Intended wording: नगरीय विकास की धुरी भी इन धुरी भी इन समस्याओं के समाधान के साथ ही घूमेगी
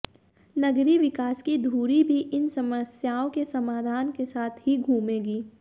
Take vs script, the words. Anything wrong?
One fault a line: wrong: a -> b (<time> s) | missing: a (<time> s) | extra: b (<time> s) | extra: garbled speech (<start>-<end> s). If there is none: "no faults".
missing: धुरी भी इन (2.5 s)